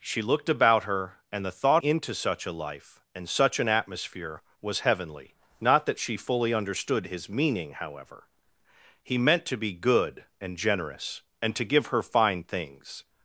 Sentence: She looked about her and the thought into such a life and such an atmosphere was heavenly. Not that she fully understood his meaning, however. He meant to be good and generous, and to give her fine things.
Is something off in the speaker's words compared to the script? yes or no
no